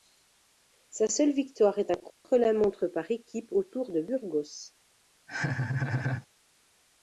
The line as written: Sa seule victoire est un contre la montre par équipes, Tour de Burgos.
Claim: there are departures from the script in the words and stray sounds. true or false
true